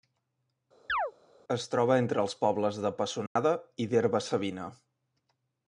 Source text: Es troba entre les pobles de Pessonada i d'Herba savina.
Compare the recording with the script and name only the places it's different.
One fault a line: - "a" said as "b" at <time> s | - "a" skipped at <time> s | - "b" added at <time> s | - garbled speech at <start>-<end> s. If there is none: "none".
- "les" said as "els" at 2.2 s